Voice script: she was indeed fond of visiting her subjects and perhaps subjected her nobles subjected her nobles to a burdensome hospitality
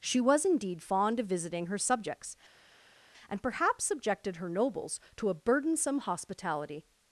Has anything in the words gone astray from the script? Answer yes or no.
yes